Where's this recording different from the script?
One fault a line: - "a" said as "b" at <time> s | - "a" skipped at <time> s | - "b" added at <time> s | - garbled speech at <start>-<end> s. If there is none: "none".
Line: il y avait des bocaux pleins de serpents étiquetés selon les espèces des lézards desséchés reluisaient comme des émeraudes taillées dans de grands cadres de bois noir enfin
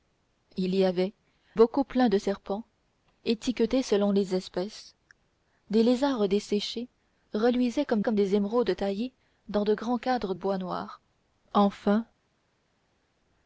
- "des" skipped at 1.1 s
- "comme" added at 8.0 s
- "de" skipped at 10.3 s